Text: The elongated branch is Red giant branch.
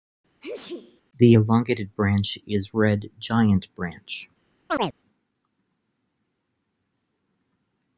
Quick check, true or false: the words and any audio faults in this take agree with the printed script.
false